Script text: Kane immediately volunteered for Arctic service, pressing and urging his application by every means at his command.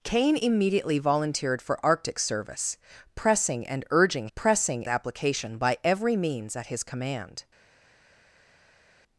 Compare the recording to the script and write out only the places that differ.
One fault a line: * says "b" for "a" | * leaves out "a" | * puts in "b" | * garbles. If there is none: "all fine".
* says "pressing" for "his"